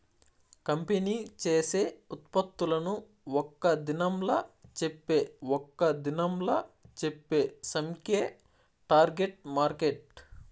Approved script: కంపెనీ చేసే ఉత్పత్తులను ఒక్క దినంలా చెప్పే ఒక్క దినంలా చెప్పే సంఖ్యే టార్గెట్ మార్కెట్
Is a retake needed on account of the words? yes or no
no